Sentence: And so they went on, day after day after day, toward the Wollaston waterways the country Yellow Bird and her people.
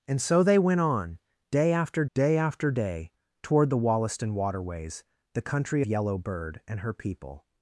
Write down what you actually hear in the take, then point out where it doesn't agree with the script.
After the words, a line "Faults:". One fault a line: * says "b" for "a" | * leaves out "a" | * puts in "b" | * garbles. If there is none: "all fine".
And so they went on, day after day after day, toward the Wollaston waterways the country Yellow Bird and her people.
Faults:
all fine